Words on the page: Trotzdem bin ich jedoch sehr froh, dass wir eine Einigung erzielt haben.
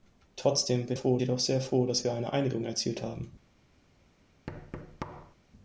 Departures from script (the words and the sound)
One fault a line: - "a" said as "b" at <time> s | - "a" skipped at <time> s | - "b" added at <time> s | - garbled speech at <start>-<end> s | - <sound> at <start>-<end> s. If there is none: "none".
- "ich" said as "froh" at 0.9 s
- thud at 4.5-5.4 s